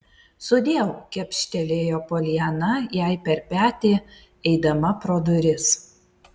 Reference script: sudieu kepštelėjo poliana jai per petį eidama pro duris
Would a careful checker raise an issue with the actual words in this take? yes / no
no